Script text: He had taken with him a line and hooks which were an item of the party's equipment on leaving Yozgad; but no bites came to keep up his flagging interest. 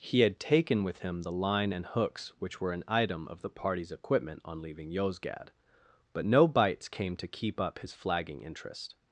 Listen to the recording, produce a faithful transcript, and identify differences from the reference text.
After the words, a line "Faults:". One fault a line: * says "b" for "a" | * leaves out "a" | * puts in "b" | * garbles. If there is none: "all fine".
He had taken with him the line and hooks which were an item of the party's equipment on leaving Yozgad; but no bites came to keep up his flagging interest.
Faults:
* says "the" for "a"